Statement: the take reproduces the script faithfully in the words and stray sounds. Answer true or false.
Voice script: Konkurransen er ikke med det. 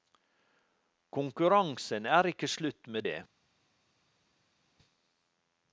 false